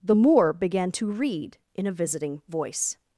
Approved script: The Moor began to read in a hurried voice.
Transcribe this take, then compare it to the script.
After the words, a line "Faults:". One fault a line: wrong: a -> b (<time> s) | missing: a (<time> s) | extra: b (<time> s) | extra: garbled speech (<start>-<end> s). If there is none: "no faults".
The Moor began to read in a visiting voice.
Faults:
wrong: hurried -> visiting (1.9 s)